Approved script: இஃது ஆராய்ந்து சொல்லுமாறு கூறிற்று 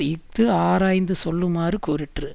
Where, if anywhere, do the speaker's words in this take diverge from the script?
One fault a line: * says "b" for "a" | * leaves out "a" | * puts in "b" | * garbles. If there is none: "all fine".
all fine